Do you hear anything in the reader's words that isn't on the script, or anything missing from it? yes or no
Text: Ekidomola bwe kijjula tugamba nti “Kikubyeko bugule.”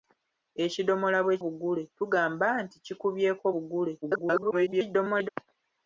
yes